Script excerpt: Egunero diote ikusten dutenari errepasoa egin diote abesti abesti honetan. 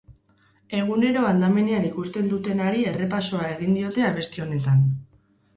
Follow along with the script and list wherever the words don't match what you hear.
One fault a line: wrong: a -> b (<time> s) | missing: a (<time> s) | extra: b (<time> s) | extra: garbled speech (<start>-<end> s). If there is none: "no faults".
wrong: diote -> aldamenean (1.3 s)
missing: abesti (4.5 s)